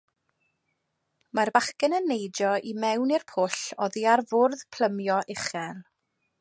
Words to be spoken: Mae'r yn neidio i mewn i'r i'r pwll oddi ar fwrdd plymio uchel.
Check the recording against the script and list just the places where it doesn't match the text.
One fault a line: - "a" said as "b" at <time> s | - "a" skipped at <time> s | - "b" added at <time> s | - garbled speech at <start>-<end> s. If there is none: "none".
- "bachgen" added at 1.6 s
- "i'r" skipped at 3.3 s